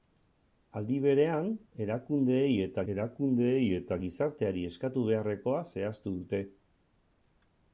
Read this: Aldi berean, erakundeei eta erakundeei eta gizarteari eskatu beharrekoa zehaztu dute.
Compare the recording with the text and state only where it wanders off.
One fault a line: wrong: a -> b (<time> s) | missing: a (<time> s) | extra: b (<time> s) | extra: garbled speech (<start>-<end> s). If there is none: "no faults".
no faults